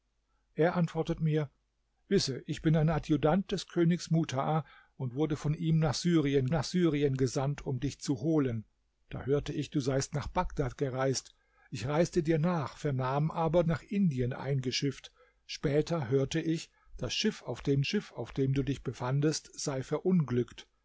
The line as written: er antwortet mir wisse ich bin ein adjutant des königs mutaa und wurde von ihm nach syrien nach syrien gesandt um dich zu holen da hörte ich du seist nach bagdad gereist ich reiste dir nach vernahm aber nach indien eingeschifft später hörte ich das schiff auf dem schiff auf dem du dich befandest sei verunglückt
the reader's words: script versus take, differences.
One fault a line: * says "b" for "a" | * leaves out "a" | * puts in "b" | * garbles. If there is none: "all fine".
all fine